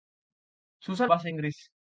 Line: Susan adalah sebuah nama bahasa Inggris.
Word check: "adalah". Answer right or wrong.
wrong